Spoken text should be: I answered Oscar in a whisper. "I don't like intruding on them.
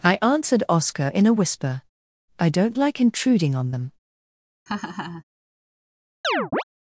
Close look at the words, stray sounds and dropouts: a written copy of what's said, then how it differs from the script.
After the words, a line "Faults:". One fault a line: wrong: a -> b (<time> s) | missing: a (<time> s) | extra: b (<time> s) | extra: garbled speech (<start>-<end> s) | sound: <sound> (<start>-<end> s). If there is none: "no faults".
I answered Oscar in a whisper. "I don't like intruding on them.
Faults:
sound: laugh (4.7-5.2 s)
sound: chirp (6.2-6.6 s)